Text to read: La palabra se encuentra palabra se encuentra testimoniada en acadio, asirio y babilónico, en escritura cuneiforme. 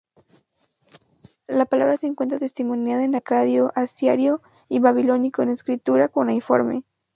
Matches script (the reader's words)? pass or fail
fail